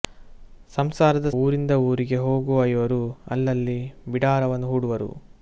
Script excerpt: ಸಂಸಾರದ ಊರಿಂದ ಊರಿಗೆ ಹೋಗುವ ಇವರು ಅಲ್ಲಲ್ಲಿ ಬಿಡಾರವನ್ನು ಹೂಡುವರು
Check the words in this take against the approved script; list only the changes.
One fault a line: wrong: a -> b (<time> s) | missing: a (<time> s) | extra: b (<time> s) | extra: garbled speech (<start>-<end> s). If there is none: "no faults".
no faults